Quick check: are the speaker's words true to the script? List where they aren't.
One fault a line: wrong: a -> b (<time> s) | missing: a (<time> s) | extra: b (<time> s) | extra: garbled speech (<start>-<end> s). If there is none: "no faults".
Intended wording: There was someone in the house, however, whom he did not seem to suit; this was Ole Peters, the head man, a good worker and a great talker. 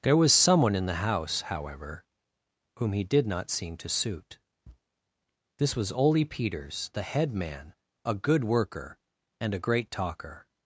no faults